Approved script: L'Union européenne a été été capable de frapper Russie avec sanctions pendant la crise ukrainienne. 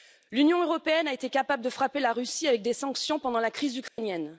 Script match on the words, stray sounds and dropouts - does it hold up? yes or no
no